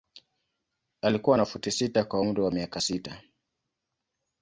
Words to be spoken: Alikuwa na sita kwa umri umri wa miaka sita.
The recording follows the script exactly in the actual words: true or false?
false